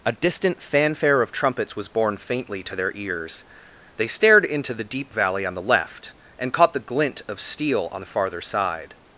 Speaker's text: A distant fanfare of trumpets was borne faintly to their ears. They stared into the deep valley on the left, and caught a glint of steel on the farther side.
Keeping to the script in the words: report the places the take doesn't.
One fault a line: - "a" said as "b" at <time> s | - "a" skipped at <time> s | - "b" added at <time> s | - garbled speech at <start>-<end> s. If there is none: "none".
- "a" said as "the" at 6.7 s